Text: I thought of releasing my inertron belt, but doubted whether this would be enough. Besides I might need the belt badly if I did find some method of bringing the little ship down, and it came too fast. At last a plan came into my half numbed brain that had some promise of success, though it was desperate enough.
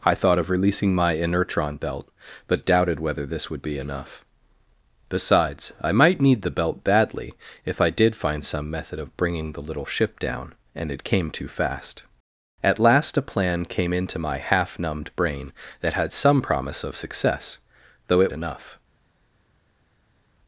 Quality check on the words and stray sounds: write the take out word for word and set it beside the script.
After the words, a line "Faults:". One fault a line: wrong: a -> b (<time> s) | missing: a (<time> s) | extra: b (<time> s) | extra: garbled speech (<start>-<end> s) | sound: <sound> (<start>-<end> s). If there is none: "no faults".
I thought of releasing my inertron belt, but doubted whether this would be enough. Besides I might need the belt badly if I did find some method of bringing the little ship down, and it came too fast. At last a plan came into my half numbed brain that had some promise of success, though it enough.
Faults:
missing: was desperate (18.3 s)